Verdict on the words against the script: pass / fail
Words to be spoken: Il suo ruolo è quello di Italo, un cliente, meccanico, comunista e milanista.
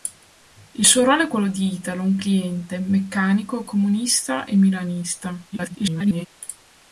fail